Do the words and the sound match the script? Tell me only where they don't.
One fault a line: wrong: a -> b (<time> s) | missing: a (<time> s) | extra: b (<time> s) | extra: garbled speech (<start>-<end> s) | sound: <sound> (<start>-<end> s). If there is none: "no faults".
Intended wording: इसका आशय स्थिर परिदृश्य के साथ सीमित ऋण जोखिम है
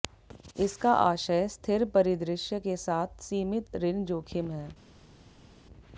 no faults